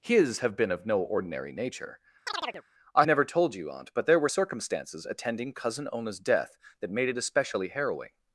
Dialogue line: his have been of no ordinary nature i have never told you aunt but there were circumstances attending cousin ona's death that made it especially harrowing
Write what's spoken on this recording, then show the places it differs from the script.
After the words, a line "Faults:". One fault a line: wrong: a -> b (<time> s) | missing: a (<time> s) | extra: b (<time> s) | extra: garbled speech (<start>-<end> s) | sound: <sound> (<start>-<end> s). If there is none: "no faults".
his have been of no ordinary nature i never told you aunt but there were circumstances attending cousin ona's death that made it especially harrowing
Faults:
sound: chirp (2.3-2.6 s)
missing: have (3.0 s)